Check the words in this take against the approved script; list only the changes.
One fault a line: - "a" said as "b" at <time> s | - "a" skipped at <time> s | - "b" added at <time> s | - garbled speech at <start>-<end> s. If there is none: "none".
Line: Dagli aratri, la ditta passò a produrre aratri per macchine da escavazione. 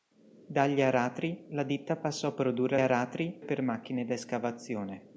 none